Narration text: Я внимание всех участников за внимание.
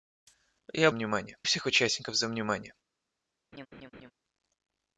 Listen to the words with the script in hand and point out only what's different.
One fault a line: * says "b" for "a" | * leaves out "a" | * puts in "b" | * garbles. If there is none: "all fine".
all fine